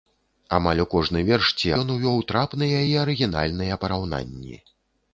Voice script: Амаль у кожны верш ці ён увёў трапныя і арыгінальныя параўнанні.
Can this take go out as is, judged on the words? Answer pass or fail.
pass